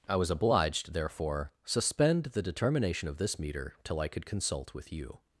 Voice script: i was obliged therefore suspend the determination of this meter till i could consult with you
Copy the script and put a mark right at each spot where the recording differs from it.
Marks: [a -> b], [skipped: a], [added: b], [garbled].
i was obliged therefore suspend the determination of this meter till i could consult with you